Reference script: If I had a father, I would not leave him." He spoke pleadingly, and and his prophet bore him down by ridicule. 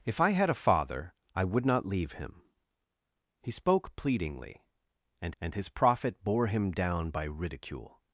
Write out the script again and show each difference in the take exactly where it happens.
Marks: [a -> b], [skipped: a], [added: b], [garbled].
If I had a father, I would not leave him." He spoke pleadingly, and and his prophet bore him down by ridicule.